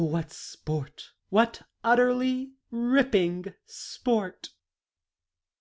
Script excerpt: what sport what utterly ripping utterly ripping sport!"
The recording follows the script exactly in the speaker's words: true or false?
false